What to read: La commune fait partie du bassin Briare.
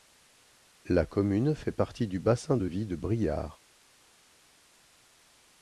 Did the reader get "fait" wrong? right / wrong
right